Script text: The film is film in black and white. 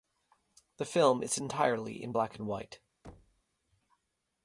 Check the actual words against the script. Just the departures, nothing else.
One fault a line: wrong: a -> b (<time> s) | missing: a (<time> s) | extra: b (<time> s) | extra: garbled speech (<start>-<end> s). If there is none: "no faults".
wrong: film -> entirely (1.4 s)